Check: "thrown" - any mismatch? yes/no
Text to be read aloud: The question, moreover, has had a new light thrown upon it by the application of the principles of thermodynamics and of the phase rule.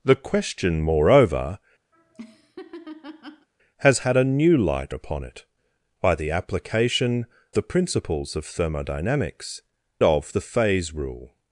yes